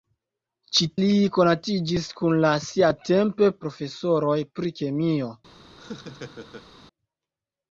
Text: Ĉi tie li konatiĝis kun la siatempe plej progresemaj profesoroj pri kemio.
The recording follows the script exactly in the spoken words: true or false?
false